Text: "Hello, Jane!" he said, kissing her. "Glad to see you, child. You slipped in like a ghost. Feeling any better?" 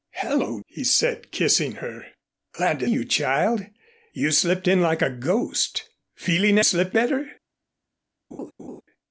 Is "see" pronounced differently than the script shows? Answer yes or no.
yes